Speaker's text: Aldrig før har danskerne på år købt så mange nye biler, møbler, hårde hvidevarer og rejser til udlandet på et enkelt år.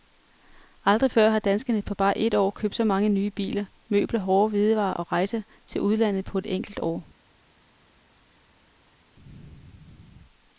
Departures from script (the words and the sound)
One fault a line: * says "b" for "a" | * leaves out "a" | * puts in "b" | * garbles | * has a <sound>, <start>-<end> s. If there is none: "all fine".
* puts in "bare et"